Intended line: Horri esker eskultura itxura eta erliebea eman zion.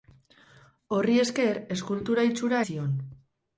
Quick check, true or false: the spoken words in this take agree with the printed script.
false